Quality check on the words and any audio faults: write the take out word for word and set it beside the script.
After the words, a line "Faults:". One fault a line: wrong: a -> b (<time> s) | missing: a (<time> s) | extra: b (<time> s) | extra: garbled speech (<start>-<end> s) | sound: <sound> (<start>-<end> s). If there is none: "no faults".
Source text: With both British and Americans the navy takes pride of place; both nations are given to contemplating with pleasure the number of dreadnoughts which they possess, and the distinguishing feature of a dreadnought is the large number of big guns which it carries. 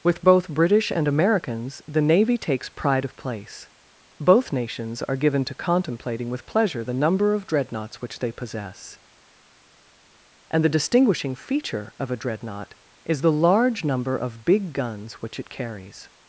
With both British and Americans the navy takes pride of place; both nations are given to contemplating with pleasure the number of dreadnoughts which they possess, and the distinguishing feature of a dreadnought is the large number of big guns which it carries.
Faults:
no faults